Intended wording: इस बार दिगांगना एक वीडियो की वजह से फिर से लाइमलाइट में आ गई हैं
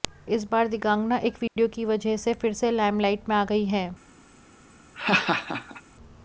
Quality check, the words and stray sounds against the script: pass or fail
fail